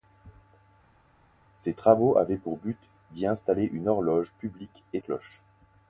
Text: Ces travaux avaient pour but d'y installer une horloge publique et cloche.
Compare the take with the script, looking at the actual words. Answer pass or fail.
pass